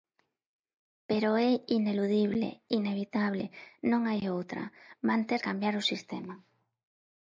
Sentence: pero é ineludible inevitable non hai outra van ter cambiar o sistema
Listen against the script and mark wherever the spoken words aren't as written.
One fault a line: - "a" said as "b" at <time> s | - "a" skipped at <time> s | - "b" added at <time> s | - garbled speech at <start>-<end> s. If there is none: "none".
none